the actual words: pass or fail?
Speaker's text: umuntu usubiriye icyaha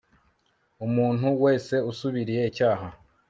fail